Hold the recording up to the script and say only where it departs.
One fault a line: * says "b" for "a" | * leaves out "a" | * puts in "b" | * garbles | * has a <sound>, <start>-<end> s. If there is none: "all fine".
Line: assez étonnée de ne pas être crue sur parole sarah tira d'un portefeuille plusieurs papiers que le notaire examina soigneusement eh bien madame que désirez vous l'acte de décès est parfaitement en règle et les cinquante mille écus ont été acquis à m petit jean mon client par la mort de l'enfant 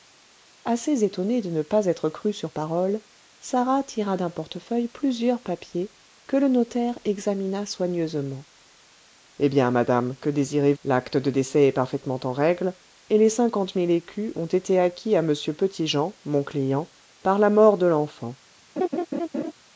* leaves out "vous"
* has a laugh, 18.8-19.5 s